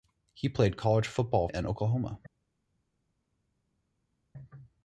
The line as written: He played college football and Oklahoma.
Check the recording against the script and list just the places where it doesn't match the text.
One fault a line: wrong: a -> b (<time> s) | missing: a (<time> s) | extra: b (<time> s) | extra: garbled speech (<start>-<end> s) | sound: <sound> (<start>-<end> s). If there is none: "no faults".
no faults